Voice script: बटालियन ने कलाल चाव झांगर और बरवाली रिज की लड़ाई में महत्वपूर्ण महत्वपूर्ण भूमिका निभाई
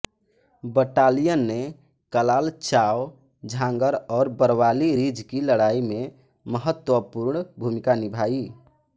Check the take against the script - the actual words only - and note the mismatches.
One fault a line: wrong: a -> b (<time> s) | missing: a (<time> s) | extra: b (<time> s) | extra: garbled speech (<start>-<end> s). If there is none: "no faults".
missing: महत्वपूर्ण (7.4 s)